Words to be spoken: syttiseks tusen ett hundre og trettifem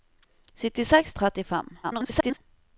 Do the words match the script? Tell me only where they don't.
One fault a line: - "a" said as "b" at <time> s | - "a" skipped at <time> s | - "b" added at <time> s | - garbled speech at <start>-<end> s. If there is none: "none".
- "tusen ett hundre" skipped at 1.1 s
- garbled speech at 1.8-2.4 s